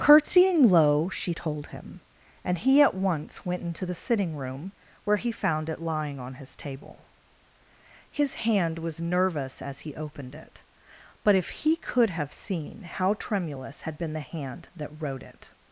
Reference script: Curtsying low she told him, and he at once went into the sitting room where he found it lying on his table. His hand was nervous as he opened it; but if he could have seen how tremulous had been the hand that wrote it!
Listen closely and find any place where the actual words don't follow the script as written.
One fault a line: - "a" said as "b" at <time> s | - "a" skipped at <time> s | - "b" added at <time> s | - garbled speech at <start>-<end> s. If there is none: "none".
none